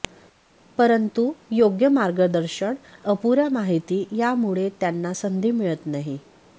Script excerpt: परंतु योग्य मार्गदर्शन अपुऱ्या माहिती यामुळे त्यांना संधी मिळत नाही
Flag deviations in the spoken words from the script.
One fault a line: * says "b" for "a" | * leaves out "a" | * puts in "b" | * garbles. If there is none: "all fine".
all fine